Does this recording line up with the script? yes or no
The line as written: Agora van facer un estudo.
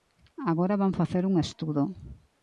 yes